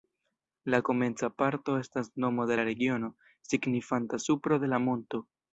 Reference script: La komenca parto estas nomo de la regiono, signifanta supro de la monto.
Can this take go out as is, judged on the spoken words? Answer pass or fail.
pass